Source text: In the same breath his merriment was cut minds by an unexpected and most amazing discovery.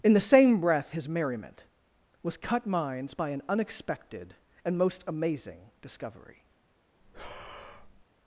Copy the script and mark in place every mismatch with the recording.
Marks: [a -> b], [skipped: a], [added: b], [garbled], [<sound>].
In the same breath his merriment was cut minds by an unexpected and most amazing discovery. [breath]